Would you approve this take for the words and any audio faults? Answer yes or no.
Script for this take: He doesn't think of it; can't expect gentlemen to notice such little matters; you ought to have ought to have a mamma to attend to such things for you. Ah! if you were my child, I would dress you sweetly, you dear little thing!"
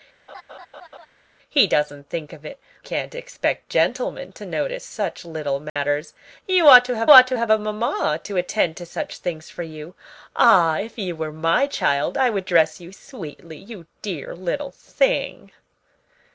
no